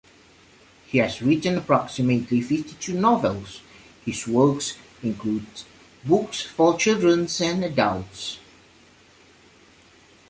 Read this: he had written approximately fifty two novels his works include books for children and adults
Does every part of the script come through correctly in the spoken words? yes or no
no